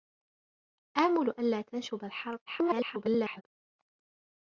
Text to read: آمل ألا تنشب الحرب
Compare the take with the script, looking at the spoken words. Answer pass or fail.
fail